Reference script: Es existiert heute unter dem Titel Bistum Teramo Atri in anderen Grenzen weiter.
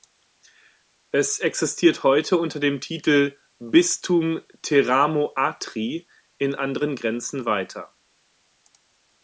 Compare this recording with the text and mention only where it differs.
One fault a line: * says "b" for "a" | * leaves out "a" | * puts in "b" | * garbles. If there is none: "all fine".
all fine